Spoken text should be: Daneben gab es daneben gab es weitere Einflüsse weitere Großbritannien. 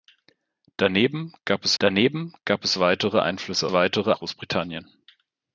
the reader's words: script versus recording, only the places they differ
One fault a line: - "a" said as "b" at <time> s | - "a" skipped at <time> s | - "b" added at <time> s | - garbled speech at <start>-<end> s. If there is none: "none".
none